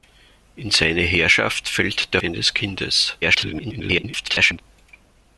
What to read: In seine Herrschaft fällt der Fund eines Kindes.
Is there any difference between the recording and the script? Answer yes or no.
yes